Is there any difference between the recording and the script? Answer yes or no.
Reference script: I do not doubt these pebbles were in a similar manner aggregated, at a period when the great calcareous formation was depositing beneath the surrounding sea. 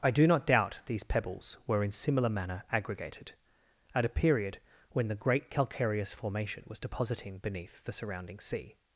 yes